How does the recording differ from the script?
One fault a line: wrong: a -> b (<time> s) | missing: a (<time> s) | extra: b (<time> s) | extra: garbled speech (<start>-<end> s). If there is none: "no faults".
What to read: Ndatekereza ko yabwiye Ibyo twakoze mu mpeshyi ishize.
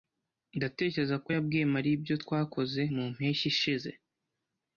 extra: Mariya (1.7 s)